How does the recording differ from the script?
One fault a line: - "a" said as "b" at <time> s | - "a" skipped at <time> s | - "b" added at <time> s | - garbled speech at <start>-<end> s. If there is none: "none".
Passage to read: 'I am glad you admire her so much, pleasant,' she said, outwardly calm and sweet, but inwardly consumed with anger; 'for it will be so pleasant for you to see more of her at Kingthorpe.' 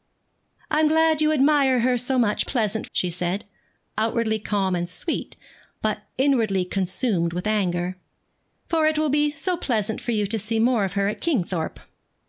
none